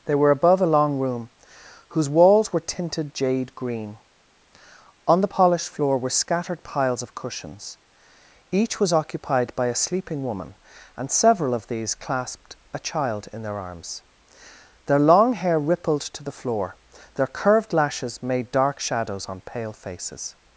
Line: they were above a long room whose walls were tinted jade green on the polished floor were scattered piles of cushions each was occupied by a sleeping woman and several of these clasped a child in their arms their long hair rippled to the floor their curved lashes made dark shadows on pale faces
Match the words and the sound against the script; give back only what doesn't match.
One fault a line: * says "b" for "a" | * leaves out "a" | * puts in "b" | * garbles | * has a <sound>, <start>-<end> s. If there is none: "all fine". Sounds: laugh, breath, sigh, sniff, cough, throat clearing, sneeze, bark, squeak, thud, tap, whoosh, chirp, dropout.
all fine